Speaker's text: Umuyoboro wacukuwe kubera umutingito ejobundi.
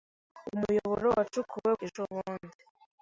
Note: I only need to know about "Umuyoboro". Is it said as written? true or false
true